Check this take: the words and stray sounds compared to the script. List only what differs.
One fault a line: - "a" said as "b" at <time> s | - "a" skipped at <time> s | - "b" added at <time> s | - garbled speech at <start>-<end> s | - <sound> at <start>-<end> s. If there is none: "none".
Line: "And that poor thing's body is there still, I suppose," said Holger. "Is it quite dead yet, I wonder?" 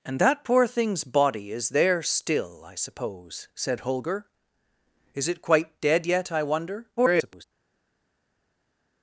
- garbled speech at 7.0-7.4 s